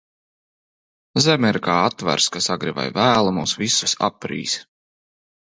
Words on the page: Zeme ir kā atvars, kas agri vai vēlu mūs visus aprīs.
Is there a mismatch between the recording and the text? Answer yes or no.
no